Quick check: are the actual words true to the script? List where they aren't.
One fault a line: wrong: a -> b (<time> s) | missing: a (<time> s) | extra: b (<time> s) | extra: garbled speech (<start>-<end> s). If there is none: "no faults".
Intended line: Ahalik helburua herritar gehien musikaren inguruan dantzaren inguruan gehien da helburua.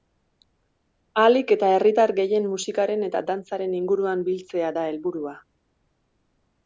wrong: helburua -> eta (1.6 s)
wrong: inguruan -> eta (3.1 s)
wrong: gehien -> biltzea (4.3 s)